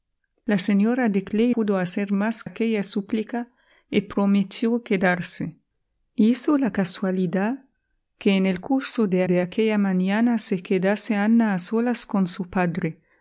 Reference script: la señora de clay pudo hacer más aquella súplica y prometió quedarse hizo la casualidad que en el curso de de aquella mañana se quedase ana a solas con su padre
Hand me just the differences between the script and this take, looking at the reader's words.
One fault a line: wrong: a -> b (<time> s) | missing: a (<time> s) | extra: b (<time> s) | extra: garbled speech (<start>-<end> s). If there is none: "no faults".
no faults